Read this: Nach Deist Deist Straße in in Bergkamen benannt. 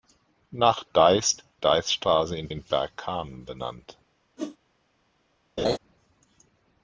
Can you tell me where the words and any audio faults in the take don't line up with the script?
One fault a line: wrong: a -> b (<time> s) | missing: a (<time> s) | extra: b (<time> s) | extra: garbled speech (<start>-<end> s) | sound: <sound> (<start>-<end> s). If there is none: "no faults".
sound: whoosh (4.4-4.6 s)
sound: laugh (5.6-5.8 s)